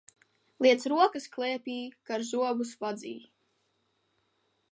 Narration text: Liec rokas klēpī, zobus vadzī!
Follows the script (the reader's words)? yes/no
no